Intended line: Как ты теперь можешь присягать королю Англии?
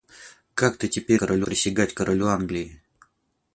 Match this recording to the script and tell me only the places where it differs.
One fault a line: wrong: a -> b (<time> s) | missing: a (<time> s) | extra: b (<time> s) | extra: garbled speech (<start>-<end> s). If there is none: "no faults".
wrong: можешь -> королю (1.2 s)